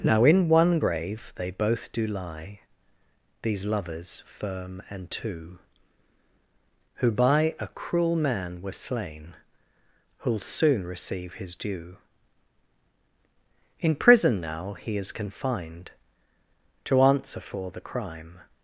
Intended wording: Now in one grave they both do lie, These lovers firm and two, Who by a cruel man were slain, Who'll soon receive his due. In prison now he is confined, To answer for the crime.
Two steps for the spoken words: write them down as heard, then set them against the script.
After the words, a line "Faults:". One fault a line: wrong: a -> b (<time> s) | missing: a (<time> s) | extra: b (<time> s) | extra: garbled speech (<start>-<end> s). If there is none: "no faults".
Now in one grave they both do lie, These lovers firm and two, Who by a cruel man were slain, Who'll soon receive his due. In prison now he is confined, To answer for the crime.
Faults:
no faults